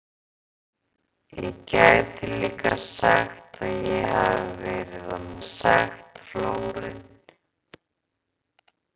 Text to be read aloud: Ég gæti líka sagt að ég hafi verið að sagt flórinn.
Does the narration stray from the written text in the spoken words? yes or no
no